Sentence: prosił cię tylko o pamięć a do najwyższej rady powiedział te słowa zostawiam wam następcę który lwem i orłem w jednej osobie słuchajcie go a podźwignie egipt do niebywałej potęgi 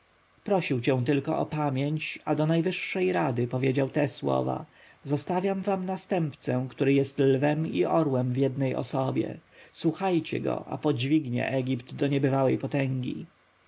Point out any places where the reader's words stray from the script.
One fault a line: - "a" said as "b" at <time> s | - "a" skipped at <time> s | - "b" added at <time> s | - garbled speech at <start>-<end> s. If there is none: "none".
- "jest" added at 6.9 s